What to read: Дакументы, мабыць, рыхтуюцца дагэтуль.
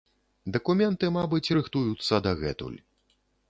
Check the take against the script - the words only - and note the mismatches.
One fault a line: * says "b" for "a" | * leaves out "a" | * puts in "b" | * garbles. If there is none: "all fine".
all fine